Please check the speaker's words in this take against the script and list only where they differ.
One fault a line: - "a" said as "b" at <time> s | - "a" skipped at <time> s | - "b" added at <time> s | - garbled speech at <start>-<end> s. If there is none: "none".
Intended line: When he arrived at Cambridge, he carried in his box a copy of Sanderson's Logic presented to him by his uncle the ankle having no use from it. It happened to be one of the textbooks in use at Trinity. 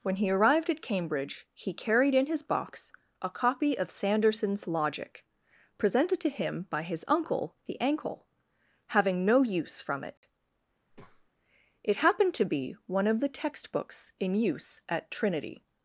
none